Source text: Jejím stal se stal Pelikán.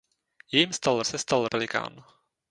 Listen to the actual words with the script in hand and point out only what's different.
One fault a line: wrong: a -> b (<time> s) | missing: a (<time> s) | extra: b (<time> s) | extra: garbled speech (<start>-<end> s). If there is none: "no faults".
no faults